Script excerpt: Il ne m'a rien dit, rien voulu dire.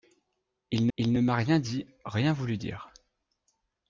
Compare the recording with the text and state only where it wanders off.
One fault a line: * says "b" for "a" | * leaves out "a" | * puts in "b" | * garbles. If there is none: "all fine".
* puts in "il"